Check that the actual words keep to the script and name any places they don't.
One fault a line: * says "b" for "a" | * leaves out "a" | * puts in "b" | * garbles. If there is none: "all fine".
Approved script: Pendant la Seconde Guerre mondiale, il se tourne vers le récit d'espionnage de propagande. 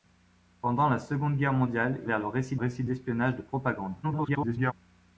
* leaves out "il se tourne"
* puts in "récit"
* garbles